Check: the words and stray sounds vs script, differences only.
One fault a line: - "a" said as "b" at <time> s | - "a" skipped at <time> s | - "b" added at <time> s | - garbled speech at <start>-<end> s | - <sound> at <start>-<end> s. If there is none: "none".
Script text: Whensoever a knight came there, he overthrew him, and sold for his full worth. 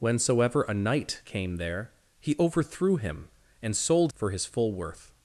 none